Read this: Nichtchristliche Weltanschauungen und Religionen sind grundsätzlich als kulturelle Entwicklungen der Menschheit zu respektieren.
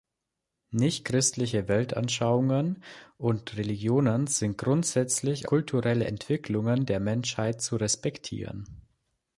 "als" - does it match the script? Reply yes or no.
no